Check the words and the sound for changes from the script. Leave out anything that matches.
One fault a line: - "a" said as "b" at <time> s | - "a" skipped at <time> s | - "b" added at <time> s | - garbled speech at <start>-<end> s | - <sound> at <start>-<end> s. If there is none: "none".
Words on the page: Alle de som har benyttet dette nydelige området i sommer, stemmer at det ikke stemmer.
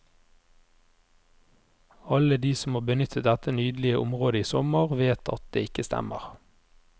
- "stemmer" said as "vet" at 5.0 s